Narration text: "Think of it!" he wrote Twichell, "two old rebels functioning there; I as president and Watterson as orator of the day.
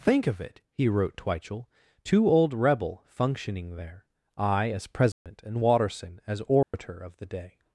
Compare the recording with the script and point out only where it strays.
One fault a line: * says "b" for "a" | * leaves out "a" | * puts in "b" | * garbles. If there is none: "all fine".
* says "rebel" for "rebels"